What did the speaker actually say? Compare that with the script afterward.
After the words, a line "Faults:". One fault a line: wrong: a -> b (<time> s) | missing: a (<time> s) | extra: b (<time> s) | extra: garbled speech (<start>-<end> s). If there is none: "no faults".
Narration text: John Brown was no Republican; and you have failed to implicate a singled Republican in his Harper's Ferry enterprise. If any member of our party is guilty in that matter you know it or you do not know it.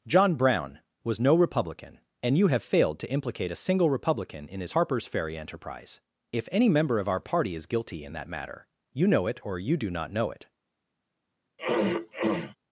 John Brown was no Republican; and you have failed to implicate a single Republican in his Harper's Ferry enterprise. If any member of our party is guilty in that matter you know it or you do not know it.
Faults:
wrong: singled -> single (3.5 s)